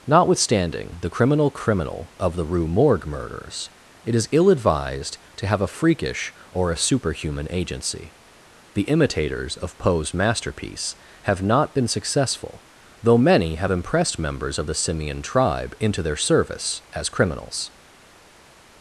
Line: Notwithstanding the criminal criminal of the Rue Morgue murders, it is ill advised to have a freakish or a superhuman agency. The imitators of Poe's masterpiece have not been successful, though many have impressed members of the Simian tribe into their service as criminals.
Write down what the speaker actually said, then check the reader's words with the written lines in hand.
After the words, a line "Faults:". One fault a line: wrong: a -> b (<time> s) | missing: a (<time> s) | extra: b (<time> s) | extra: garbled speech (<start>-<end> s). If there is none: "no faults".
Notwithstanding the criminal criminal of the Rue Morgue murders, it is ill advised to have a freakish or a superhuman agency. The imitators of Poe's masterpiece have not been successful, though many have impressed members of the Simian tribe into their service as criminals.
Faults:
no faults